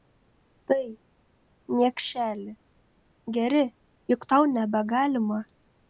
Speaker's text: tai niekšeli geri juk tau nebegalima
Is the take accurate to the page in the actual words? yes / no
yes